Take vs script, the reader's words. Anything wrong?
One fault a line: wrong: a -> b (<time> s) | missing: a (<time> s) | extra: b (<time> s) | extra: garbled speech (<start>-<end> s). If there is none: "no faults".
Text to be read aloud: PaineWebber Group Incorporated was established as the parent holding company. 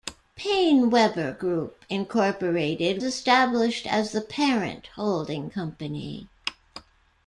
missing: was (3.0 s)